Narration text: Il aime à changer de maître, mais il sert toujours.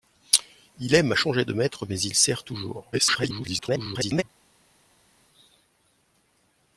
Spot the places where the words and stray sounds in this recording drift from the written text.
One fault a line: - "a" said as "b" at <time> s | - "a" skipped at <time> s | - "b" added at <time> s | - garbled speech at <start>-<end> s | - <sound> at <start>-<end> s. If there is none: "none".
- garbled speech at 2.9-4.2 s